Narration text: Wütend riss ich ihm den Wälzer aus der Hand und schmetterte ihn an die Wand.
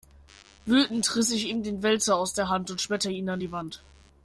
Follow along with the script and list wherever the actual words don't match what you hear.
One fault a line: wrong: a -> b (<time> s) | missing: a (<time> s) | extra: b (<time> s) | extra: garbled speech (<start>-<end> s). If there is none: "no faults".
no faults